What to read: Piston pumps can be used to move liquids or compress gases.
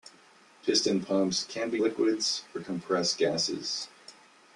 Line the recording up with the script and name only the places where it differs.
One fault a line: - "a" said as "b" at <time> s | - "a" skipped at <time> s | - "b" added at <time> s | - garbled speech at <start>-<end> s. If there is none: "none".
- "used to move" skipped at 1.8 s